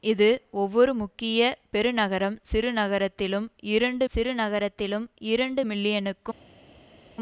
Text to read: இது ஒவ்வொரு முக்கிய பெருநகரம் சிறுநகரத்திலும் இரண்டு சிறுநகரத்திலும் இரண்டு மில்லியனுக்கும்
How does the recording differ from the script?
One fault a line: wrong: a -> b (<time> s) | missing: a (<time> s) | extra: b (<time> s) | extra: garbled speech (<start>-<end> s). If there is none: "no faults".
no faults